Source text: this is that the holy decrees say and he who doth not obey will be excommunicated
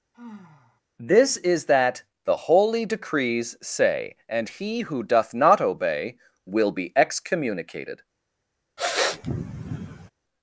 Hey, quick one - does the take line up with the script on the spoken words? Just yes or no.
yes